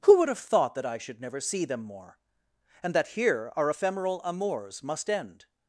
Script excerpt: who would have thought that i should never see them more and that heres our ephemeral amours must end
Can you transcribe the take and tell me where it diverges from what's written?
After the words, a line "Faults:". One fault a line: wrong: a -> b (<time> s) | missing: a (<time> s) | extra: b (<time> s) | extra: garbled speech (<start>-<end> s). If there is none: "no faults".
who would have thought that i should never see them more and that here our ephemeral amours must end
Faults:
wrong: heres -> here (3.1 s)